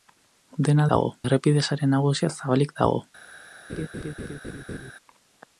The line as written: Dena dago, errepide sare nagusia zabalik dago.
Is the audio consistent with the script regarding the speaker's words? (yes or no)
yes